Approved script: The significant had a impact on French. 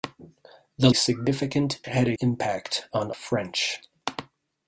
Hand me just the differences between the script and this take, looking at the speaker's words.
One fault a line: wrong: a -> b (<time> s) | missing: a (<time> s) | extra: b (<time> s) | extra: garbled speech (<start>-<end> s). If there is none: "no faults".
no faults